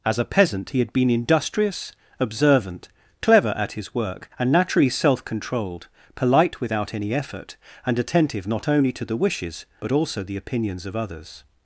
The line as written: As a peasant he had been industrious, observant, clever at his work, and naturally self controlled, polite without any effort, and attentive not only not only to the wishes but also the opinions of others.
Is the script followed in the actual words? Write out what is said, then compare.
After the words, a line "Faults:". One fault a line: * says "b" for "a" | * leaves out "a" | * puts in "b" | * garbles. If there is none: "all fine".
As a peasant he had been industrious, observant, clever at his work, and naturally self controlled, polite without any effort, and attentive not only to the wishes but also the opinions of others.
Faults:
* leaves out "not only"